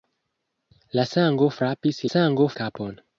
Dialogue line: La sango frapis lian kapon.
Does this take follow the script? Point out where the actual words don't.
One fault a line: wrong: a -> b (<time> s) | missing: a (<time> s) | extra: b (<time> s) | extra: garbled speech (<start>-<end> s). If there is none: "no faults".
wrong: lian -> sango (2.1 s)